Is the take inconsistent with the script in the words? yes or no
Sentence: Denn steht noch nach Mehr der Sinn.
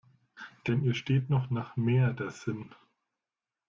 yes